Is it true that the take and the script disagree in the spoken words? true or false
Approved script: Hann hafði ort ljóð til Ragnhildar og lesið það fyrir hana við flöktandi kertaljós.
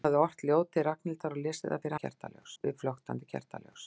true